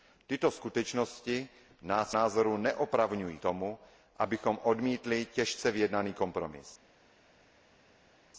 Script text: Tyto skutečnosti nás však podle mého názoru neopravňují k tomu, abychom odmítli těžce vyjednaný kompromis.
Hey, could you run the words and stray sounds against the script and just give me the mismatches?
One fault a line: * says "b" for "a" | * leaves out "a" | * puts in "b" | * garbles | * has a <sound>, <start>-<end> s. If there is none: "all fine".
* leaves out "však podle mého"
* leaves out "k"